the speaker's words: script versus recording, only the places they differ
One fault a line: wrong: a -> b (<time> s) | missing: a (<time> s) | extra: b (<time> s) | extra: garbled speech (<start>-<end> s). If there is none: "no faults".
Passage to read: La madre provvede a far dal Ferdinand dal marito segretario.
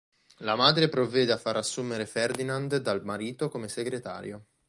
wrong: dal -> assumere (1.6 s)
extra: come (3.5 s)